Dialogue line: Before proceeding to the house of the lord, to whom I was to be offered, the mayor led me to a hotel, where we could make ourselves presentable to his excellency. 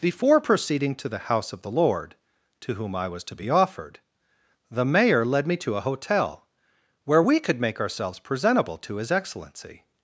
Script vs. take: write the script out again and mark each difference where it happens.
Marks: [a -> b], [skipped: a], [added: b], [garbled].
Before proceeding to the house of the lord, to whom I was to be offered, the mayor led me to a hotel, where we could make ourselves presentable to his excellency.